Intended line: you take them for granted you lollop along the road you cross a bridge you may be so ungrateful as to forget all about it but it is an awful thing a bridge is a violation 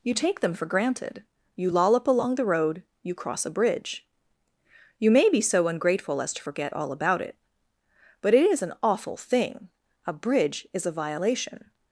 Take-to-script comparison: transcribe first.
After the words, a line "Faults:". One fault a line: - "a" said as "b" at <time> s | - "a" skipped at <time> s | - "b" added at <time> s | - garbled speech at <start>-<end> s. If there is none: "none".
you take them for granted you lollop along the road you cross a bridge you may be so ungrateful as to forget all about it but it is an awful thing a bridge is a violation
Faults:
none